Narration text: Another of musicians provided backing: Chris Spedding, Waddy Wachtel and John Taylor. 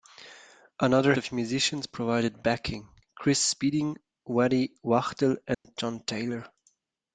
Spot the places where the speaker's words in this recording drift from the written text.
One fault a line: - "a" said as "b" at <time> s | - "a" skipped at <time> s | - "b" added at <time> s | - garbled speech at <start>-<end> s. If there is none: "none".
none